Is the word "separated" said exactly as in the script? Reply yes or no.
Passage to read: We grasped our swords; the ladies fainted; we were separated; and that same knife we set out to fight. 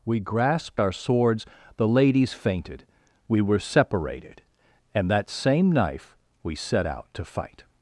yes